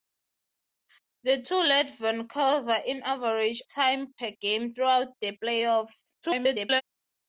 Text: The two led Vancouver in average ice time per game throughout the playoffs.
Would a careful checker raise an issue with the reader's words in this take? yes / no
yes